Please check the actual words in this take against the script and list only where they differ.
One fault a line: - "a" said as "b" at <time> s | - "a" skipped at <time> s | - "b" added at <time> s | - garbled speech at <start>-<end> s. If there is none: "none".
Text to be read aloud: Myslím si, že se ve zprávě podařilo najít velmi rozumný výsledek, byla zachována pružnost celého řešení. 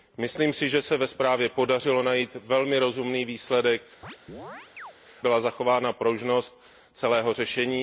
none